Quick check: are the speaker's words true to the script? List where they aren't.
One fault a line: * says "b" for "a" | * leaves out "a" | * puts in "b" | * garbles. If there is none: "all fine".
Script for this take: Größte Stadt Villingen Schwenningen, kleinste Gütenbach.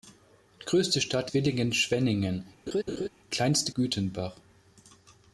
all fine